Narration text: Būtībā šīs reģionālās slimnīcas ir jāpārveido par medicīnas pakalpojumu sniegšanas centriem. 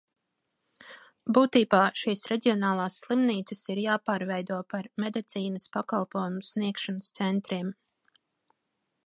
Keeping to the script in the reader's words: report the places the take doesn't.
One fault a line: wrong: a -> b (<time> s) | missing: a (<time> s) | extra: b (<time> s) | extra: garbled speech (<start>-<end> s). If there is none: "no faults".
no faults